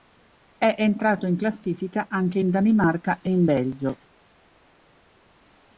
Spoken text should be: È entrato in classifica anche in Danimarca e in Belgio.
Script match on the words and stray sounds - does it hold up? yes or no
yes